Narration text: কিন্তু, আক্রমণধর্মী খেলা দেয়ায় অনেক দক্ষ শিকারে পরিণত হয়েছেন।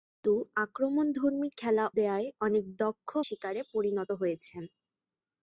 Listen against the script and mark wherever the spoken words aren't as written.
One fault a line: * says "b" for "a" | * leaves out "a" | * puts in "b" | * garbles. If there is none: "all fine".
all fine